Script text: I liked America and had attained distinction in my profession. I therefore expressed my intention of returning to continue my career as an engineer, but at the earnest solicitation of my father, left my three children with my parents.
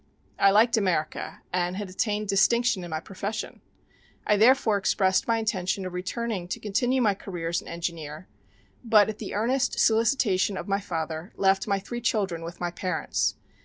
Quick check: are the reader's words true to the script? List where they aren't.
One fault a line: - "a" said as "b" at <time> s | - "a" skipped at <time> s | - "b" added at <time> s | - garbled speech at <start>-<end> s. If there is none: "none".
none